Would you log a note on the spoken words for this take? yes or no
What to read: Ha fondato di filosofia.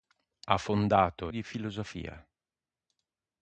no